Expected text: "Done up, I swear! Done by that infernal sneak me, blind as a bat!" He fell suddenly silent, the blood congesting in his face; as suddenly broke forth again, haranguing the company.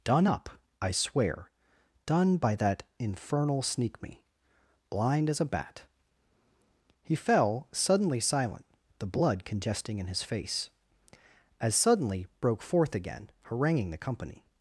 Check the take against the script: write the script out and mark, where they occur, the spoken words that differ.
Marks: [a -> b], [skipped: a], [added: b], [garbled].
"Done up, I swear! Done by that infernal sneak me, blind as a bat!" He fell suddenly silent, the blood congesting in his face; as suddenly broke forth again, haranguing the company.